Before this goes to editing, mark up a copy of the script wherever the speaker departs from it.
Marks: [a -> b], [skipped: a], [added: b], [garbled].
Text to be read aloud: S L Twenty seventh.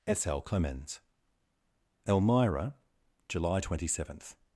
S L [added: CLEMENS ELMIRA July] Twenty seventh.